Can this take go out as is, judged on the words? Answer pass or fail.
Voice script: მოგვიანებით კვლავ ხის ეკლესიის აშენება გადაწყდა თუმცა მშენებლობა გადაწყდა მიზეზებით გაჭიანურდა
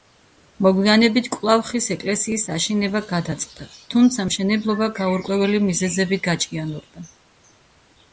fail